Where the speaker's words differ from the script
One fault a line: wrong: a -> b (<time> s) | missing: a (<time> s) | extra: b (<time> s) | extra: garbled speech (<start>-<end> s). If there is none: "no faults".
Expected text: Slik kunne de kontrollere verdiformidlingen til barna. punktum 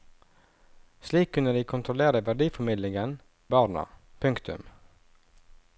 missing: til (3.2 s)